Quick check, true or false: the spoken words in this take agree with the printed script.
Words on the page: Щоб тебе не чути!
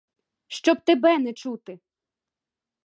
true